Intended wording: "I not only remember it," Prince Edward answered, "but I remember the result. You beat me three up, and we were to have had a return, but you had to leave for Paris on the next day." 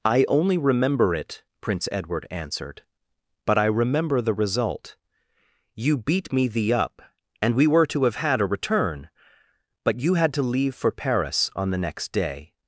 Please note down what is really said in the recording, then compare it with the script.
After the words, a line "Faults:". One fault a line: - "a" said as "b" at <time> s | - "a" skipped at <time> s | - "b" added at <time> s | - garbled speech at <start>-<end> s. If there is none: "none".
"I only remember it," Prince Edward answered, "but I remember the result. You beat me thee up, and we were to have had a return, but you had to leave for Paris on the next day."
Faults:
- "not" skipped at 0.2 s
- "three" said as "thee" at 6.5 s